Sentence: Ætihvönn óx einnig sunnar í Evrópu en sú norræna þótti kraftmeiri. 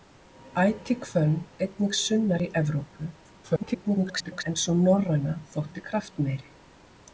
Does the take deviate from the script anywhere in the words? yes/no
yes